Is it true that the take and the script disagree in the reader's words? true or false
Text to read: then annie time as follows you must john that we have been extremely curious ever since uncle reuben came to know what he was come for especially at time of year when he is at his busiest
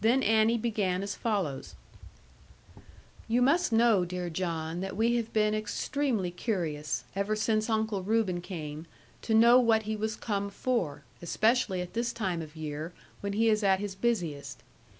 true